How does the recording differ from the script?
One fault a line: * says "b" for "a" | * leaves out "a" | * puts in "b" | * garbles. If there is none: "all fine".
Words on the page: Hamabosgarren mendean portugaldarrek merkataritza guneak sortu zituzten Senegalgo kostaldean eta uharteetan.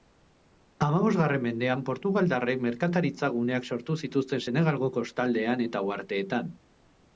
all fine